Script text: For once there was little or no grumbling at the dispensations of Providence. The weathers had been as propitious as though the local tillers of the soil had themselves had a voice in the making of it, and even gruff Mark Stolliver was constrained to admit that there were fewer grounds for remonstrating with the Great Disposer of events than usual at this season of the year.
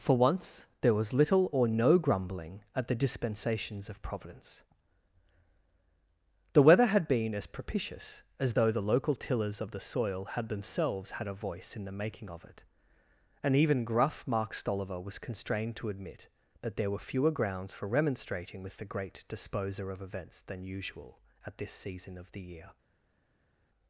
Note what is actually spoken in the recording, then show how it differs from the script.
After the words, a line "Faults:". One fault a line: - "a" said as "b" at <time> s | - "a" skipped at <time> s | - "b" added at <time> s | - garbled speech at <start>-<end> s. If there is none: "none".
For once there was little or no grumbling at the dispensations of Providence. The weather had been as propitious as though the local tillers of the soil had themselves had a voice in the making of it, and even gruff Mark Stolliver was constrained to admit that there were fewer grounds for remonstrating with the Great Disposer of events than usual at this season of the year.
Faults:
- "weathers" said as "weather" at 6.6 s